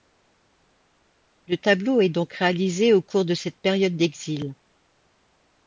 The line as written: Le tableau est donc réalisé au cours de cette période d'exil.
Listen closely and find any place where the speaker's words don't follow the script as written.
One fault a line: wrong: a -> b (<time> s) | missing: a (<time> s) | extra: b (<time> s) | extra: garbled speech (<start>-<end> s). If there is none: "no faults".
no faults